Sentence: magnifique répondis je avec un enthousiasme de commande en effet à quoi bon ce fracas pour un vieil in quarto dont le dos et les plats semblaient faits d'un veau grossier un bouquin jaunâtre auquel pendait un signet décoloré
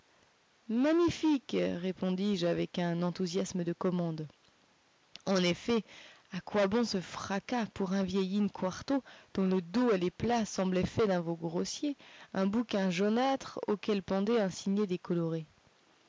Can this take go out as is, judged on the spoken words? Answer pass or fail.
pass